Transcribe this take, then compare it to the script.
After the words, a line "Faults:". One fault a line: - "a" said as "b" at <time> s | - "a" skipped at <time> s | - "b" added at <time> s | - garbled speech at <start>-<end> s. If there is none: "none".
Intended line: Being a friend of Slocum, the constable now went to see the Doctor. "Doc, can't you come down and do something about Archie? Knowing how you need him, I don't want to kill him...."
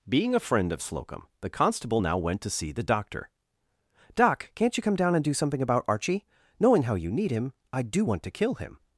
Being a friend of Slocum, the constable now went to see the Doctor. "Doc, can't you come down and do something about Archie? Knowing how you need him, I do want to kill him...."
Faults:
- "don't" said as "do" at 7.8 s